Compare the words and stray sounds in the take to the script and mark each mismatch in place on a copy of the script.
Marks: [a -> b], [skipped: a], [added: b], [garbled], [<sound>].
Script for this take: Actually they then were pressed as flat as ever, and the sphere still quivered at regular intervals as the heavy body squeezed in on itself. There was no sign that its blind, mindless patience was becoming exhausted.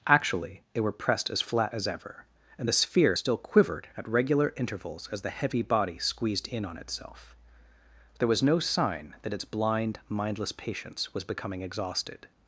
Actually they [skipped: then] were pressed as flat as ever, and the sphere still quivered at regular intervals as the heavy body squeezed in on itself. There was no sign that its blind, mindless patience was becoming exhausted.